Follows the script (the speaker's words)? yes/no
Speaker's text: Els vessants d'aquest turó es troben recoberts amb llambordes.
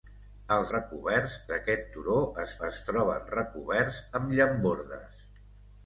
no